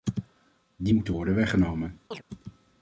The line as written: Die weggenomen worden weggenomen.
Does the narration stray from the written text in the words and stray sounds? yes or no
yes